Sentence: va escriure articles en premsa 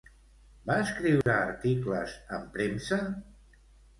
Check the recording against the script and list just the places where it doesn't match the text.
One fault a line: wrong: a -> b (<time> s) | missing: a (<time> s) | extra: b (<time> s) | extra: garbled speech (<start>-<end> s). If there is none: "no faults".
no faults